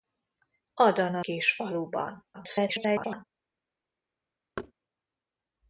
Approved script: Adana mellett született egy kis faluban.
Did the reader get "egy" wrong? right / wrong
wrong